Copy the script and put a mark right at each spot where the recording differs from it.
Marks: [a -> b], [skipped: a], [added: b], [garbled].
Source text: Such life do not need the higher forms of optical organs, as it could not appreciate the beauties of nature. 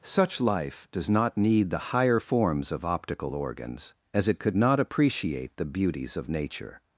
Such life [do -> does] not need the higher forms of optical organs, as it could not appreciate the beauties of nature.